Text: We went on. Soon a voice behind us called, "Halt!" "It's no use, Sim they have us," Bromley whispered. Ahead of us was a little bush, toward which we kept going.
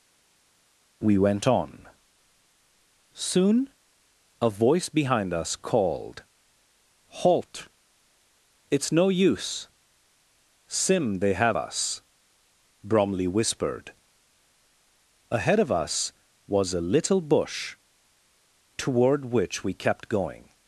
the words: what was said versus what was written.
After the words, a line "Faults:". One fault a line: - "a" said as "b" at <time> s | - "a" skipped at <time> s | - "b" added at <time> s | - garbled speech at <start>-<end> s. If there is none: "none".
We went on. Soon a voice behind us called, "Halt!" "It's no use, Sim they have us," Bromley whispered. Ahead of us was a little bush, toward which we kept going.
Faults:
none